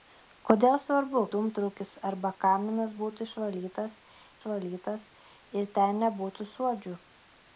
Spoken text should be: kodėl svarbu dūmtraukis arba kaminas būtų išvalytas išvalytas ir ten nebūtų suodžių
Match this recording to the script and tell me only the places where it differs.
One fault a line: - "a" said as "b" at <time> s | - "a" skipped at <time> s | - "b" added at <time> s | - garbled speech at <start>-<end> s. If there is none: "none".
none